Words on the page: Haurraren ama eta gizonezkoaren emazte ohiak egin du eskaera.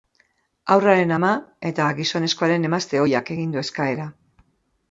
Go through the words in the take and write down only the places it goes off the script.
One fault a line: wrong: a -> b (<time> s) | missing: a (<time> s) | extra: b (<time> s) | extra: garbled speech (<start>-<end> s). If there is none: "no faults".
no faults